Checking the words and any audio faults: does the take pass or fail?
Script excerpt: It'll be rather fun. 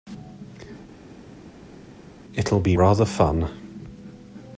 pass